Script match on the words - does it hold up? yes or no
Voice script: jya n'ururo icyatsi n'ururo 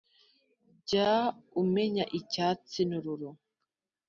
no